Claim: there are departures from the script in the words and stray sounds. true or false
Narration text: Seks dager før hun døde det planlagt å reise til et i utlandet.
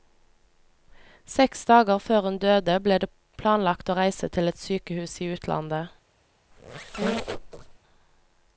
true